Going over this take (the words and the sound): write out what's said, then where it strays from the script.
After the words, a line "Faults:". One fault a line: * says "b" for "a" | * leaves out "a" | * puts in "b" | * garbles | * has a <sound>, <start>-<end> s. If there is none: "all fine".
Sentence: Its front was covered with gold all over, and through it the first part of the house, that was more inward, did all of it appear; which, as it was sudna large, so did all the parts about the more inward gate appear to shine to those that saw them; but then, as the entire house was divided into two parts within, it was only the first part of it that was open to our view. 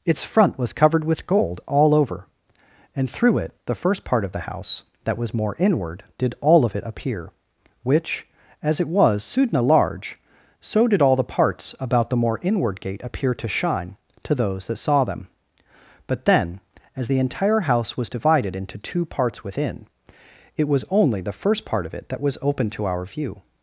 Its front was covered with gold all over, and through it the first part of the house, that was more inward, did all of it appear; which, as it was sudna large, so did all the parts about the more inward gate appear to shine to those that saw them; but then, as the entire house was divided into two parts within, it was only the first part of it that was open to our view.
Faults:
all fine